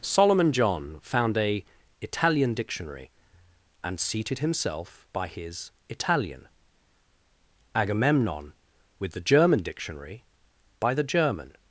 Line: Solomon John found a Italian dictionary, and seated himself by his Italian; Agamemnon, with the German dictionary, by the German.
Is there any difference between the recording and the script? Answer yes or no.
no